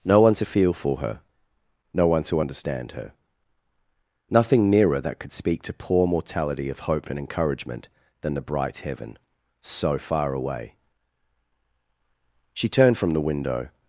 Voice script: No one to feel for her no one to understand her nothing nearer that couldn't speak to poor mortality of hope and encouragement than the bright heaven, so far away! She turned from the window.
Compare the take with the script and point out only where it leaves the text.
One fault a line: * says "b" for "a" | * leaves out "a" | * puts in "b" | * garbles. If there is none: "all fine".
* says "could" for "couldn't"